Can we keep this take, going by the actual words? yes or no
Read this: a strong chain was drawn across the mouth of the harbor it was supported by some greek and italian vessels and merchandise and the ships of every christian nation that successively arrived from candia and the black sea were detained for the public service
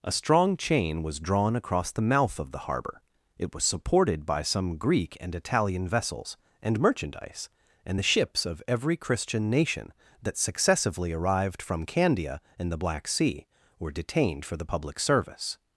yes